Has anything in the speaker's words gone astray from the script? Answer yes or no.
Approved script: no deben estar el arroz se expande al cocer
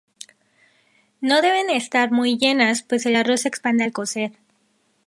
yes